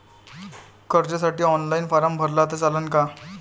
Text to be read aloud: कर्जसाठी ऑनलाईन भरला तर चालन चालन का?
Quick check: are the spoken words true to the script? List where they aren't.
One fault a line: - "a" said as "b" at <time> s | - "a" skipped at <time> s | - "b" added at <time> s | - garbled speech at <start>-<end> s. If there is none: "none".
- "फारम" added at 1.9 s
- "चालन" skipped at 2.9 s